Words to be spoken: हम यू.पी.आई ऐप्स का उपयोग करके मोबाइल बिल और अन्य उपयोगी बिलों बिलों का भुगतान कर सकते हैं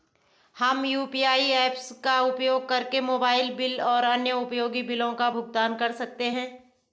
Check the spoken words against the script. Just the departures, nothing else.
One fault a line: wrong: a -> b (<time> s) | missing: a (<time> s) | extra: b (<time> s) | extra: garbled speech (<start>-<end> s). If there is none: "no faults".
missing: बिलों (5.1 s)